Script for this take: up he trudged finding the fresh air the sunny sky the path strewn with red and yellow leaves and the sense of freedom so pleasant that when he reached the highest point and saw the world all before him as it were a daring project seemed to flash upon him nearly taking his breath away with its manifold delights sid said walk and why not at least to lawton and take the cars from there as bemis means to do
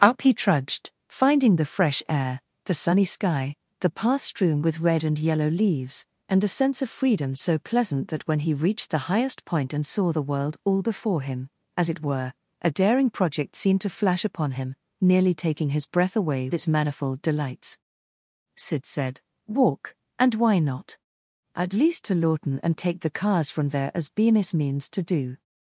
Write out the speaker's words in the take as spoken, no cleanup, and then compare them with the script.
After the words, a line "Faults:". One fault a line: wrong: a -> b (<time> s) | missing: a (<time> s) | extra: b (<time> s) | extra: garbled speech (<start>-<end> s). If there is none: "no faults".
up he trudged finding the fresh air the sunny sky the path strewn with red and yellow leaves and the sense of freedom so pleasant that when he reached the highest point and saw the world all before him as it were a daring project seemed to flash upon him nearly taking his breath away its manifold delights sid said walk and why not at least to lawton and take the cars from there as bemis means to do
Faults:
missing: with (16.5 s)